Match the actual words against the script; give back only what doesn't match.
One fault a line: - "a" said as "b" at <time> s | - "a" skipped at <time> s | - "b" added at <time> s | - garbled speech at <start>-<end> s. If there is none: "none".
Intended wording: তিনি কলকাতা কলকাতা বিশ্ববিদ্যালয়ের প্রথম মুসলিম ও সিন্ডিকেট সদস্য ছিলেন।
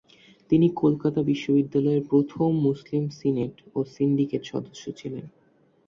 - "কলকাতা" skipped at 1.2 s
- "সিনেট" added at 3.2 s